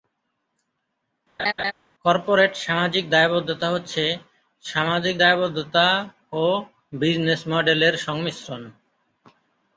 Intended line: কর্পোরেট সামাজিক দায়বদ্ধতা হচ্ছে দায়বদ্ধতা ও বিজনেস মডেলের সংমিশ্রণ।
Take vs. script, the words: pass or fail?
fail